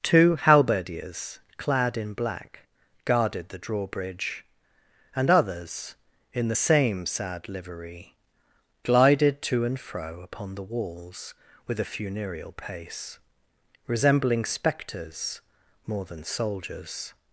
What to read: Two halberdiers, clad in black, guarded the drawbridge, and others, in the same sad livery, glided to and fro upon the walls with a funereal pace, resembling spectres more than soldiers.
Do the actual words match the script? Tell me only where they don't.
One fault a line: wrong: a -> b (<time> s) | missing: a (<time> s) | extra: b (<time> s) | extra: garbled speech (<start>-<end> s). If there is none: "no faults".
no faults